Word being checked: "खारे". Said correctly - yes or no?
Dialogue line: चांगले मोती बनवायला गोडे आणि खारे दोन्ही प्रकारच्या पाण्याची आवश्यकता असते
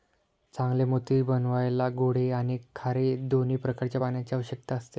yes